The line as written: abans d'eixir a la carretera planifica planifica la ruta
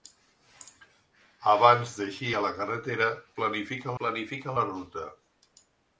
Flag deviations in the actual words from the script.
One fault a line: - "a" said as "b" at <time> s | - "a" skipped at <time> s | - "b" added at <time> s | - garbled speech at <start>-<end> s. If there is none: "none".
none